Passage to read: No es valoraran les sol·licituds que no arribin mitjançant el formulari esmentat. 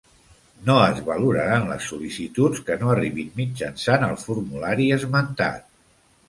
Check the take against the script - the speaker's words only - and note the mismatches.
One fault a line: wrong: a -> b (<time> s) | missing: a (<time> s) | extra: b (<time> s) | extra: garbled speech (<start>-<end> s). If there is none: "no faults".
no faults